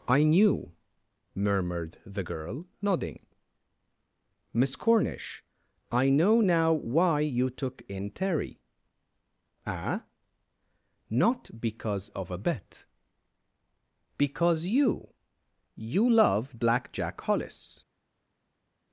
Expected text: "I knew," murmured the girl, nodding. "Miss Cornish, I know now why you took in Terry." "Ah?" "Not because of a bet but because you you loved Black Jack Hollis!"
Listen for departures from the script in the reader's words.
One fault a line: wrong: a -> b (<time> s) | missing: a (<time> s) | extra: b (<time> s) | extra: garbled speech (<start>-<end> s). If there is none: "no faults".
missing: but (12.9 s)
wrong: loved -> love (16.1 s)